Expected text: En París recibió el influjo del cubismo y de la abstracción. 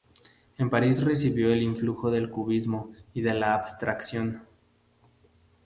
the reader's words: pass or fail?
pass